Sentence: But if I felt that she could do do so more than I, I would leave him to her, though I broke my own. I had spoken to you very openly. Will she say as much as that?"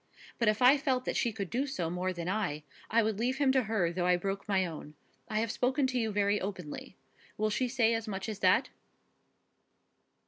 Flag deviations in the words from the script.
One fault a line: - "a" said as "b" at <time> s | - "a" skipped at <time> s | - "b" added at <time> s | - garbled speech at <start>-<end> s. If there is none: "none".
- "do" skipped at 1.7 s
- "had" said as "have" at 5.4 s